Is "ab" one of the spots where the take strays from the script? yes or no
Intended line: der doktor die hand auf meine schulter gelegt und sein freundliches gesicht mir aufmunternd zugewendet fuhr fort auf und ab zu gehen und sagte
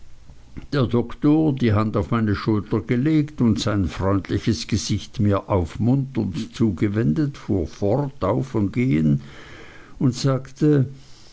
yes